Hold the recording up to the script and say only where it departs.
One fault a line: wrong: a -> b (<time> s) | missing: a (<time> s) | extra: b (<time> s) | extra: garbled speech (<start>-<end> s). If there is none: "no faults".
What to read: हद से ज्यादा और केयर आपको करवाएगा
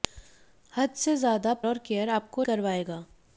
no faults